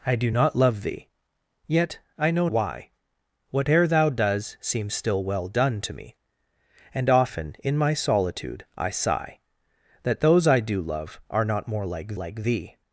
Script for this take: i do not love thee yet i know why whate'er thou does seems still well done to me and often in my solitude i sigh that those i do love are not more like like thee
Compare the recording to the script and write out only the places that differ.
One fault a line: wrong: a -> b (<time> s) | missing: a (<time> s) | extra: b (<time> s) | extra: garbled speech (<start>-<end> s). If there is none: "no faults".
no faults